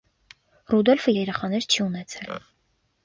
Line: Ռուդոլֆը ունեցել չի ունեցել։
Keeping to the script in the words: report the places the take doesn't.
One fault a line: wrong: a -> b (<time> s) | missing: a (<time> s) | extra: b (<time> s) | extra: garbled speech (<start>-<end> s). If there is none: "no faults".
wrong: ունեցել -> երեխաներ (1.1 s)